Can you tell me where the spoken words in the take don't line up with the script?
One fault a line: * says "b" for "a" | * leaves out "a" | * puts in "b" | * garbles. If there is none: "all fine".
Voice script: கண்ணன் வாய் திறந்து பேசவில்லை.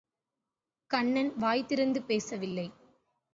all fine